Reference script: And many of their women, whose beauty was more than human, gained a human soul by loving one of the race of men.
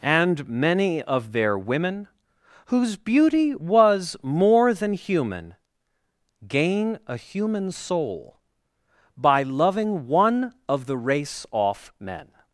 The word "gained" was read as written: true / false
false